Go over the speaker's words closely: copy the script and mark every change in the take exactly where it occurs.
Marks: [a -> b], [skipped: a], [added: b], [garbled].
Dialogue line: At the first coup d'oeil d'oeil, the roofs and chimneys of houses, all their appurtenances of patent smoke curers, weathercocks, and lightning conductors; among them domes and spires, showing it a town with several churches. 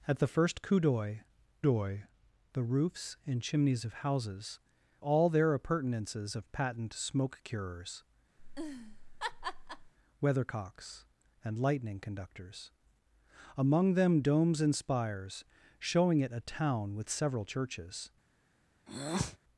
At the first coup d'oeil d'oeil, the roofs and chimneys of houses, all their appurtenances of patent smoke curers, weathercocks, and lightning conductors; among them domes and spires, showing it a town with several churches.